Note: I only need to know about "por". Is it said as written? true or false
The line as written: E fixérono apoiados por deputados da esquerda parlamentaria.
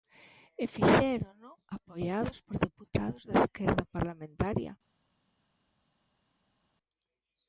true